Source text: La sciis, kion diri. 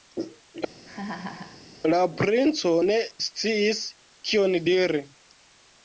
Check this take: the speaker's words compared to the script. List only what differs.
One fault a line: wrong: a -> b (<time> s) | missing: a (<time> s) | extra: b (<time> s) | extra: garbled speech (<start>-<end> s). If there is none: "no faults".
extra: princo ne (2.2 s)